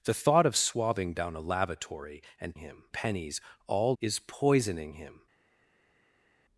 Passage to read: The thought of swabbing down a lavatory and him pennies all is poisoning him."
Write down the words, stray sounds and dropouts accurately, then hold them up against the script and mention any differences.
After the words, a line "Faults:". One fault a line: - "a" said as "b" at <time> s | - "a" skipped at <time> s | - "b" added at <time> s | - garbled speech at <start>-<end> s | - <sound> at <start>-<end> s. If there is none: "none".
The thought of swabbing down a lavatory and him pennies all is poisoning him."
Faults:
none